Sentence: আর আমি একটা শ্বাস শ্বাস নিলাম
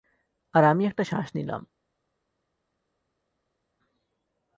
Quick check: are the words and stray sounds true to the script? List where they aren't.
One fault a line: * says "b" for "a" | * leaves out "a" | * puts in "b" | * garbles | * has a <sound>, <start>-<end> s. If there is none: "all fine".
* leaves out "শ্বাস"